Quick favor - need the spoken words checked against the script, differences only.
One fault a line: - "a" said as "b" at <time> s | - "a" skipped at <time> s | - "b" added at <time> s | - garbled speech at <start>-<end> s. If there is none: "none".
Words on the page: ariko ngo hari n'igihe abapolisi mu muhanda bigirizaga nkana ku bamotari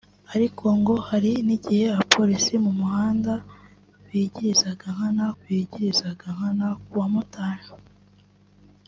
- "bigirizaga nkana" added at 5.4 s